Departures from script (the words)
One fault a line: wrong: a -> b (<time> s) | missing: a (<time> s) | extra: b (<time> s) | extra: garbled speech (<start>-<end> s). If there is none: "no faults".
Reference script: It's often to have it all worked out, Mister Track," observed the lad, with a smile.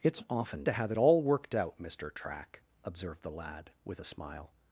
no faults